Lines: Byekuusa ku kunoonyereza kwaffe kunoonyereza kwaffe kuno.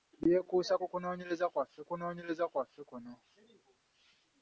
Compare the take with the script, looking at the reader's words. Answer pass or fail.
pass